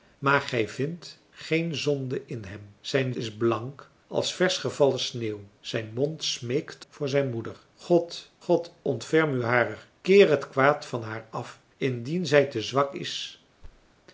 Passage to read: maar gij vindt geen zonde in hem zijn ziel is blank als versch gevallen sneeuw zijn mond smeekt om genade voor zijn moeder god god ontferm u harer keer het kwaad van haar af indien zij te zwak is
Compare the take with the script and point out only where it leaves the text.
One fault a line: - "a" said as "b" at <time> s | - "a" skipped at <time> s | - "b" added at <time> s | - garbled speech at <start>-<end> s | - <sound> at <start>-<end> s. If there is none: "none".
- "ziel" skipped at 3.1 s
- "om genade" skipped at 6.8 s
- thud at 13.6-13.9 s